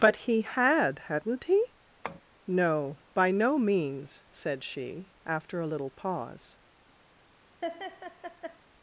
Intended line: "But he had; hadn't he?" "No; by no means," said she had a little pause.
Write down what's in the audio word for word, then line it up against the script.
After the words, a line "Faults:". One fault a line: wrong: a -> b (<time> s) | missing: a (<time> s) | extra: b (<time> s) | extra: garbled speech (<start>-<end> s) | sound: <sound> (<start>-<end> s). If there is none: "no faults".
"But he had; hadn't he?" "No; by no means," said she after a little pause.
Faults:
sound: tap (2.0-2.2 s)
wrong: had -> after (5.3 s)
sound: laugh (7.6-8.6 s)